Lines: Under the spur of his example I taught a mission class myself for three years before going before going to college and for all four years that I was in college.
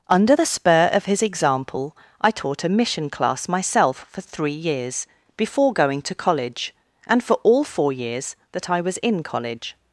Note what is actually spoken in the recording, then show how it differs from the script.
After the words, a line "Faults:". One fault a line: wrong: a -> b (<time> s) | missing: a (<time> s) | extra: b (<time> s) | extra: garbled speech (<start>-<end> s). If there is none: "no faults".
Under the spur of his example I taught a mission class myself for three years before going to college and for all four years that I was in college.
Faults:
missing: before going (6.0 s)